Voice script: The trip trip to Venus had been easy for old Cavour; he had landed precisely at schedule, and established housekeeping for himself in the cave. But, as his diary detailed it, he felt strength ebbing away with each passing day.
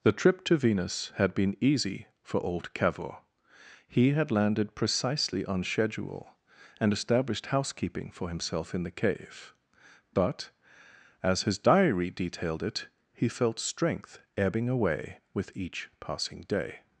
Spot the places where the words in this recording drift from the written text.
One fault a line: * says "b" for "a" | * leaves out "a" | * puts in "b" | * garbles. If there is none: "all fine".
* leaves out "trip"
* says "on" for "at"